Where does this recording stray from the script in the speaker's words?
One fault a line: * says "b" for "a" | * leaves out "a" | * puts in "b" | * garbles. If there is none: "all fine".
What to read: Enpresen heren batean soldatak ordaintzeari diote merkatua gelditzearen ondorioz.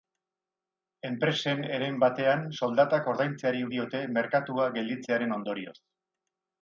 all fine